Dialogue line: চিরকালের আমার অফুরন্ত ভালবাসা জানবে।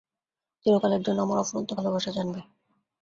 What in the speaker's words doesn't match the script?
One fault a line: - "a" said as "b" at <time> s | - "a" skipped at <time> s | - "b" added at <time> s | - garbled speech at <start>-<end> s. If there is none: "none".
- "জন্য" added at 1.0 s